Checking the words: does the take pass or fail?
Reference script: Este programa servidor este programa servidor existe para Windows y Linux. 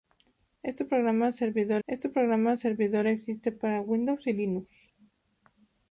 pass